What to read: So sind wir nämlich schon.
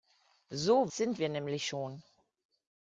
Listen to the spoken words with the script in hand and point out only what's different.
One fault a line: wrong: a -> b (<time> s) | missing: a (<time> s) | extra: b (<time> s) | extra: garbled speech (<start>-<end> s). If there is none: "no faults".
no faults